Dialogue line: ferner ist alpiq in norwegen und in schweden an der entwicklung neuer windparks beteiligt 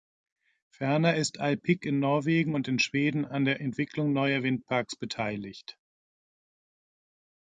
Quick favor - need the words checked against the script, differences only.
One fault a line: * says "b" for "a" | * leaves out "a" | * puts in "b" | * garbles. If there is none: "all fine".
all fine